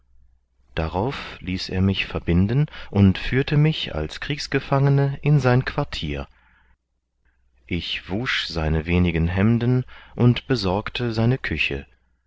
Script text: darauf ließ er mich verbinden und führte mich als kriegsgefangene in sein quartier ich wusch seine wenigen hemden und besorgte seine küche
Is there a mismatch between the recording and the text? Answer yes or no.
no